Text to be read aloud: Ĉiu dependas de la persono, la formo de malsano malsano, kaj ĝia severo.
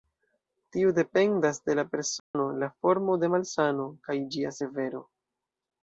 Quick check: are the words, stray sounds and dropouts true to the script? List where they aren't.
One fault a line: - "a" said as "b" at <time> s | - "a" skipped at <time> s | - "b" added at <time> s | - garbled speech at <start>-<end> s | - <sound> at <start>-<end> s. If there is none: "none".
- "Ĉiu" said as "Tiu" at 0.8 s
- dropout at 2.2-2.3 s
- "malsano" skipped at 3.9 s